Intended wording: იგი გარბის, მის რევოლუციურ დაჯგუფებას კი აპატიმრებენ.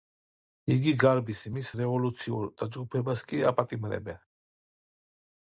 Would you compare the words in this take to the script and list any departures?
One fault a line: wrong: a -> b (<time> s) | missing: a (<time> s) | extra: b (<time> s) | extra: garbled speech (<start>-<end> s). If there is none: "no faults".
no faults